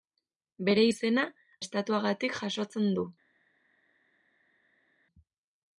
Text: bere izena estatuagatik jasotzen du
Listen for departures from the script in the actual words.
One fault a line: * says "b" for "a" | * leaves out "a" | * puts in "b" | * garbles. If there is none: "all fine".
all fine